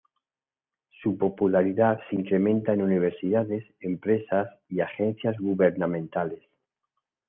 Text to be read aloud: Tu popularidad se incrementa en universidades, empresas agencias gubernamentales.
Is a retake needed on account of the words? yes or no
yes